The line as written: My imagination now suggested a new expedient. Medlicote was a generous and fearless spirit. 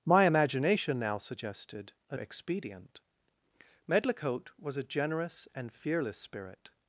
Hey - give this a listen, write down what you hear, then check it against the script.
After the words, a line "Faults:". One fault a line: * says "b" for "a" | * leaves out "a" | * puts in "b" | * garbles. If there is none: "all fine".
My imagination now suggested a expedient. Medlicote was a generous and fearless spirit.
Faults:
* leaves out "new"